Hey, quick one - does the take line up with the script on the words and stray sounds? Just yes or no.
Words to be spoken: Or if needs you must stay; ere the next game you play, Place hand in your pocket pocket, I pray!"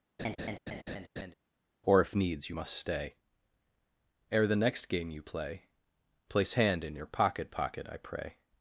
no